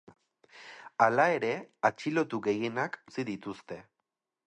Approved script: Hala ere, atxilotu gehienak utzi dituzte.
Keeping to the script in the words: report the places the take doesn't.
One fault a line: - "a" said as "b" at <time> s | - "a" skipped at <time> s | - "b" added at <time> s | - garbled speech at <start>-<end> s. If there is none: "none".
none